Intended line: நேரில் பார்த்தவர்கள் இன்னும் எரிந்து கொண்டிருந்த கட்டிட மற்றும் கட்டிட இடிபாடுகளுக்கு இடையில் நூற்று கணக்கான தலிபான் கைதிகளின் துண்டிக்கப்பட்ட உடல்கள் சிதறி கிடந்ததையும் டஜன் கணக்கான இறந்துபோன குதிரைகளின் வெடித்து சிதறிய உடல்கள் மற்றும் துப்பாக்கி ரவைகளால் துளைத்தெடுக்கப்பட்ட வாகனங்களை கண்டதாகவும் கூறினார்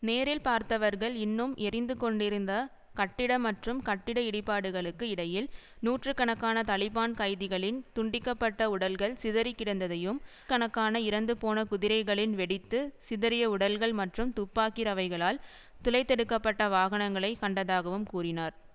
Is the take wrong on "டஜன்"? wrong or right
wrong